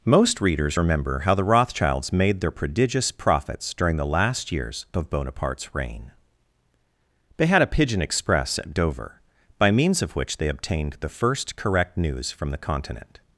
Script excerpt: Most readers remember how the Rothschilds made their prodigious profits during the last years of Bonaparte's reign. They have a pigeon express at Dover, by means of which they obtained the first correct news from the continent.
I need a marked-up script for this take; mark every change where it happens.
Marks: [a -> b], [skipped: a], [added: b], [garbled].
Most readers remember how the Rothschilds made their prodigious profits during the last years of Bonaparte's reign. They [have -> had] a pigeon express at Dover, by means of which they obtained the first correct news from the continent.